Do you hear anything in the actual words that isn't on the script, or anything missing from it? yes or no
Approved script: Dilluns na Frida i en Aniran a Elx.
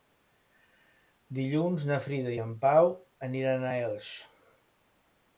yes